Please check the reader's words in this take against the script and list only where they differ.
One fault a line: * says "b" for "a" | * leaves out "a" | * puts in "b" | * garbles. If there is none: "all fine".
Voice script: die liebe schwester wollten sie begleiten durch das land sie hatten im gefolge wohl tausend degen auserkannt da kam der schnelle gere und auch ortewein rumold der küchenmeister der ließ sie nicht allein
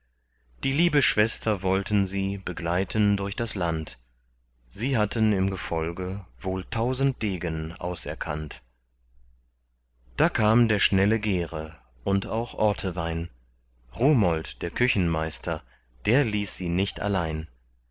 all fine